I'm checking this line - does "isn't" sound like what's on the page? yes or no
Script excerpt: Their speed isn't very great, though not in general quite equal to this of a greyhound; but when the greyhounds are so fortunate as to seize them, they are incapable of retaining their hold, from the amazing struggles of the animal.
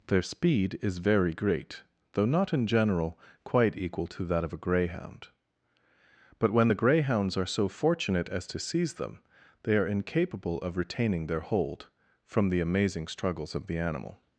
no